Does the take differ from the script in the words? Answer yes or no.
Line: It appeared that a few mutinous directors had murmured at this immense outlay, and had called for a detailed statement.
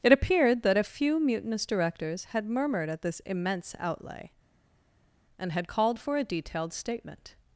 no